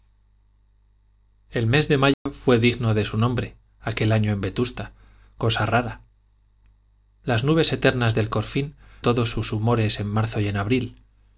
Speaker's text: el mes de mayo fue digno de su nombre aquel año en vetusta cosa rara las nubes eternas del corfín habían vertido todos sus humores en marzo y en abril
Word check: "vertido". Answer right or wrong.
wrong